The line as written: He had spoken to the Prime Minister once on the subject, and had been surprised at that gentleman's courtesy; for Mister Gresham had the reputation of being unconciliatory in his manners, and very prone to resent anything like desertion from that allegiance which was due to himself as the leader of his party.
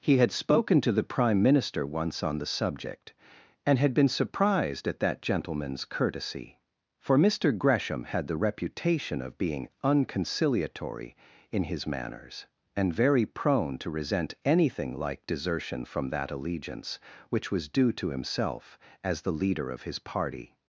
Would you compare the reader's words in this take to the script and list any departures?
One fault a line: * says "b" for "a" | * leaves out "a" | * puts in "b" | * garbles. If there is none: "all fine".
all fine